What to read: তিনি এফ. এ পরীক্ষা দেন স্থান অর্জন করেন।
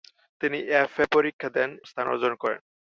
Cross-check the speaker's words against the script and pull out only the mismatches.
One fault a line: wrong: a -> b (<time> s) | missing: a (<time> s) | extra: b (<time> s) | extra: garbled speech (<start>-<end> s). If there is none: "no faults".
no faults